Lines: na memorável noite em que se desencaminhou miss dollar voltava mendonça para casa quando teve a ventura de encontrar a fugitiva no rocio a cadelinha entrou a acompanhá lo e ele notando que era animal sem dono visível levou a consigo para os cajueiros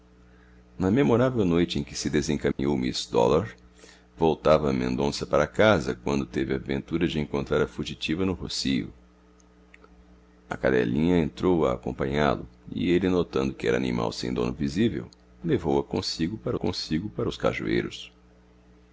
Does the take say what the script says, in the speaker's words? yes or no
no